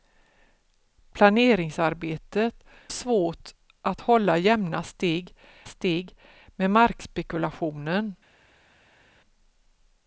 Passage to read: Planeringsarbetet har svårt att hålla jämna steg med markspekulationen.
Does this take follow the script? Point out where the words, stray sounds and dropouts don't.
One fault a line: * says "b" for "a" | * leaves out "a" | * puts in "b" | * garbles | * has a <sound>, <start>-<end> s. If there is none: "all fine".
* leaves out "har"
* puts in "steg"